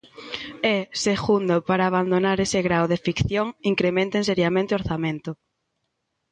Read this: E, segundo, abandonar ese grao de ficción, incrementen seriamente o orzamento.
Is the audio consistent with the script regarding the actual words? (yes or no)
no